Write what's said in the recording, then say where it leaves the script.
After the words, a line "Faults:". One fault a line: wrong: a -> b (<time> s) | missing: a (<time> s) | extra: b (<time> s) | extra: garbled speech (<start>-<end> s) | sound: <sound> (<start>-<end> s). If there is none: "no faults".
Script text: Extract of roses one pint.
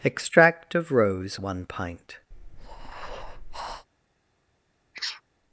Extract of rose one pint.
Faults:
wrong: roses -> rose (0.9 s)
sound: breath (2.3-3.9 s)
sound: sneeze (4.9-5.2 s)